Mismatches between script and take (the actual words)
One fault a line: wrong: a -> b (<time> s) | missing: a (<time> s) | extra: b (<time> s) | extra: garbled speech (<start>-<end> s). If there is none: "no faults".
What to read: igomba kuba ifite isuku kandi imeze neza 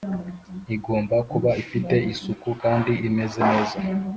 no faults